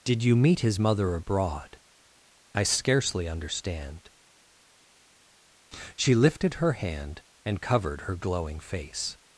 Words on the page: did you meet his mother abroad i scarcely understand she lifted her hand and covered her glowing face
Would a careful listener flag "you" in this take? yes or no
no